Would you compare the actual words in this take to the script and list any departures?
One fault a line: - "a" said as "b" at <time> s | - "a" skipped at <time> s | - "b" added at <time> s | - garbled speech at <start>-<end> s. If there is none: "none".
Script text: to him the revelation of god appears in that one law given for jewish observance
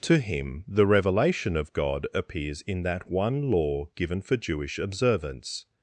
none